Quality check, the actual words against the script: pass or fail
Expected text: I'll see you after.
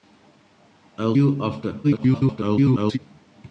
fail